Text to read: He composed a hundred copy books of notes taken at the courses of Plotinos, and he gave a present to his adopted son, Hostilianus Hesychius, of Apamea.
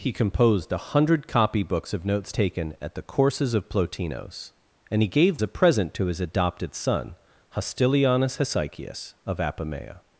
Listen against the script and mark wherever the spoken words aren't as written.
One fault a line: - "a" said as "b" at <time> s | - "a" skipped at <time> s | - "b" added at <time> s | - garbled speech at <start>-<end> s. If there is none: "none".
none